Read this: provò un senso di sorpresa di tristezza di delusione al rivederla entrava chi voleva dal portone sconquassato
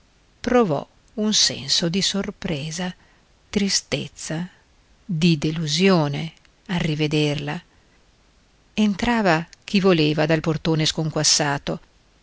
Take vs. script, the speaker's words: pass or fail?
fail